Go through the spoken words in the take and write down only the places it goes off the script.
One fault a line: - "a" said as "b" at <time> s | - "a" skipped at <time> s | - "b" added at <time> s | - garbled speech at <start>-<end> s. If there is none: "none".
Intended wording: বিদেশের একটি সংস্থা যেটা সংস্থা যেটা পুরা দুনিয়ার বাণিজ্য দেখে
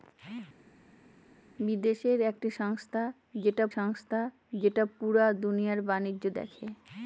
none